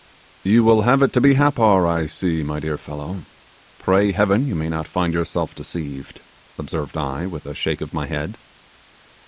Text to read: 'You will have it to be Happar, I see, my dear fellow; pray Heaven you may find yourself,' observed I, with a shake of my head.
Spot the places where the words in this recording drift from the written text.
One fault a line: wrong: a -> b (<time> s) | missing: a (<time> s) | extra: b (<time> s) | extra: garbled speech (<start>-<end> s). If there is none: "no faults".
extra: not (4.7 s)
extra: deceived (5.5 s)